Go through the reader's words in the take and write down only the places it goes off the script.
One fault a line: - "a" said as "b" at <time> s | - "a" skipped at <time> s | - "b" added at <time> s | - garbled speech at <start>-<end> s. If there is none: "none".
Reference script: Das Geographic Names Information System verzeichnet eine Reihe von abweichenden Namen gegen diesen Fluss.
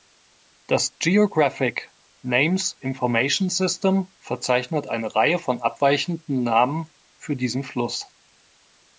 - "gegen" said as "für" at 7.2 s